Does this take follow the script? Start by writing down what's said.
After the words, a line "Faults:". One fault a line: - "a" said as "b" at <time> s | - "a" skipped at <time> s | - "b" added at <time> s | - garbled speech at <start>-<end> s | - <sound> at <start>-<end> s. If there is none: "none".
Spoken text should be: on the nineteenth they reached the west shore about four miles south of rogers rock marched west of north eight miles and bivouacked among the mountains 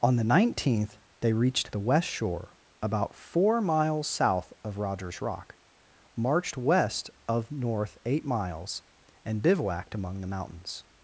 on the nineteenth they reached the west shore about four miles south of rogers rock marched west of north eight miles and bivouacked among the mountains
Faults:
none